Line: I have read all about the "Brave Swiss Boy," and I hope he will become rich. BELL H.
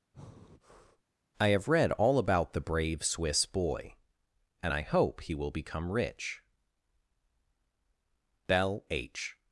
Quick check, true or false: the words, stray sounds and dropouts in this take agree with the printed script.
false